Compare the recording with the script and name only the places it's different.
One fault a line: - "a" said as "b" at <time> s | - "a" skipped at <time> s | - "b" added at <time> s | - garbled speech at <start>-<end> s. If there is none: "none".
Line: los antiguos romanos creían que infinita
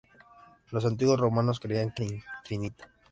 none